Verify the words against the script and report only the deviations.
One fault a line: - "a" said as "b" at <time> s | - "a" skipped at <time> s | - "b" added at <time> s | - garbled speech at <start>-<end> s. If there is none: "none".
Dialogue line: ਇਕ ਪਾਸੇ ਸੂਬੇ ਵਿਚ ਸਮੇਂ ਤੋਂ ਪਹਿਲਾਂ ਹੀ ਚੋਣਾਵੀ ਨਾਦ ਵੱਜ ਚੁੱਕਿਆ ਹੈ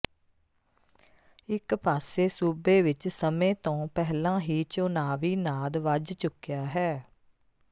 none